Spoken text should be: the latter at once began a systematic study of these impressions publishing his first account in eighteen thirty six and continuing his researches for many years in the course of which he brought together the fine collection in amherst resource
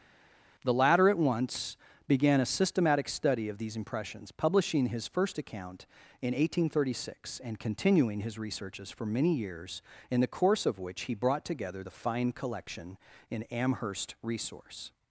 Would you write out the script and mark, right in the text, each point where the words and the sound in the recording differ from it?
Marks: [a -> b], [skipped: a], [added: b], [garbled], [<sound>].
the latter at once began a systematic study of these impressions publishing his first account in eighteen thirty six and continuing his researches for many years in the course of which he brought together the fine collection in amherst resource